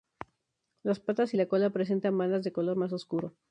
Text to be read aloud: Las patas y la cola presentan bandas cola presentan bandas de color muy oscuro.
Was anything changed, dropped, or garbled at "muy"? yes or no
yes